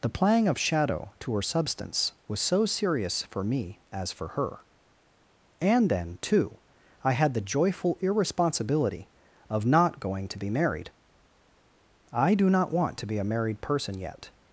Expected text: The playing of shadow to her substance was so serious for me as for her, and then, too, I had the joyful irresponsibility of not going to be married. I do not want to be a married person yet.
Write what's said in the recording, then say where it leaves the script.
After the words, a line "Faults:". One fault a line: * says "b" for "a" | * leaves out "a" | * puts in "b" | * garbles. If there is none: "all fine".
The playing of shadow to her substance was so serious for me as for her, and then, too, I had the joyful irresponsibility of not going to be married. I do not want to be a married person yet.
Faults:
all fine